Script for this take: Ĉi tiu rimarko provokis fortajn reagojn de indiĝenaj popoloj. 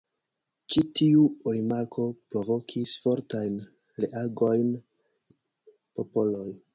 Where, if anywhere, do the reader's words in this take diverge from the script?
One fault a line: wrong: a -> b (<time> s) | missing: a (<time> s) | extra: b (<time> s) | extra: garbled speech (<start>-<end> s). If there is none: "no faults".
missing: de indiĝenaj (4.8 s)